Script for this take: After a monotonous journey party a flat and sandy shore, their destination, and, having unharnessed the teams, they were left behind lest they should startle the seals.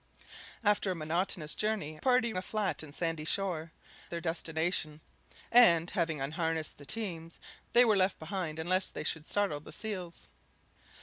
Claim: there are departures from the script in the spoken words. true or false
false